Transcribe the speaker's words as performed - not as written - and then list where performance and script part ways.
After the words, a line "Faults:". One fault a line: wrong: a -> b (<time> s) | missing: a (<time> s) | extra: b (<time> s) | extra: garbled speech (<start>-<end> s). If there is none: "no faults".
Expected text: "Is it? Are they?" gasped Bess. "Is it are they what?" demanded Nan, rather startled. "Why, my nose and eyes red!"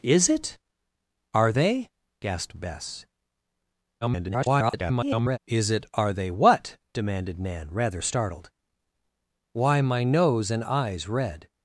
"Is it? Are they?" gasped Bess. [garbled] "Is it are they what?" demanded Nan, rather startled. "Why, my nose and eyes red!"
Faults:
extra: garbled speech (4.0-5.4 s)